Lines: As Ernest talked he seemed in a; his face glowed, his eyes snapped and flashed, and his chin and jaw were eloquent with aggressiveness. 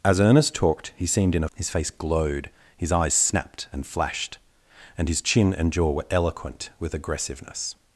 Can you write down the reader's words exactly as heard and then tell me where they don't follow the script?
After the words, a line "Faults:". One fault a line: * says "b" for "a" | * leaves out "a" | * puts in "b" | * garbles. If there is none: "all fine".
As Ernest talked he seemed in a; his face glowed, his eyes snapped and flashed, and his chin and jaw were eloquent with aggressiveness.
Faults:
all fine